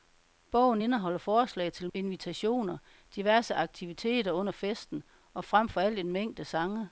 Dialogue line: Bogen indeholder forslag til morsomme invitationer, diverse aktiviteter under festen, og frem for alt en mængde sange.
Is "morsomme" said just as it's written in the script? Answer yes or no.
no